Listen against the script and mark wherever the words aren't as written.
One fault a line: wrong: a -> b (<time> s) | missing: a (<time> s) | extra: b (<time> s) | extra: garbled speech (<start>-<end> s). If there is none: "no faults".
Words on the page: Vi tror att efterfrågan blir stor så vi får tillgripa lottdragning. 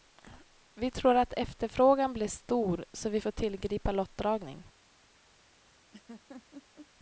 no faults